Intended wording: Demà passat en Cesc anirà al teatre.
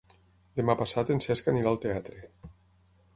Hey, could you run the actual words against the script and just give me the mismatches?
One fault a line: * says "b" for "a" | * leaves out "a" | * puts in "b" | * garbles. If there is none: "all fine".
all fine